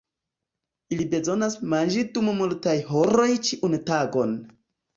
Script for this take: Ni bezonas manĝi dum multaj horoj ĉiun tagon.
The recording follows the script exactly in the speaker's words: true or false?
false